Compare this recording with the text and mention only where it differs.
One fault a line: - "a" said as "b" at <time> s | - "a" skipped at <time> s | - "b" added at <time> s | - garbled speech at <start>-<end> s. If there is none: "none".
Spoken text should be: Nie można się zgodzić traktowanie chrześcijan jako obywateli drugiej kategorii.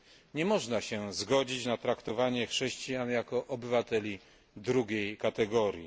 - "na" added at 1.6 s